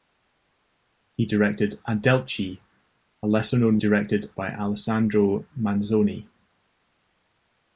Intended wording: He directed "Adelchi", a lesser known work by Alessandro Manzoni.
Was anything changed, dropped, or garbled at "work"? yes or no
yes